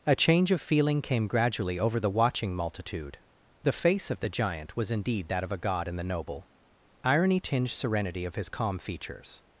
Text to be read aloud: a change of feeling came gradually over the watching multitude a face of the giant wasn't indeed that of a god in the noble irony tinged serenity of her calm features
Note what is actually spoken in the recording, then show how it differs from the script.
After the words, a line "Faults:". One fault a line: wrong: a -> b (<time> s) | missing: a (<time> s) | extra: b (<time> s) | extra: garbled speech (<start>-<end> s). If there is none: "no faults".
a change of feeling came gradually over the watching multitude the face of the giant was indeed that of a god in the noble irony tinged serenity of his calm features
Faults:
wrong: a -> the (3.6 s)
wrong: wasn't -> was (4.8 s)
wrong: her -> his (8.3 s)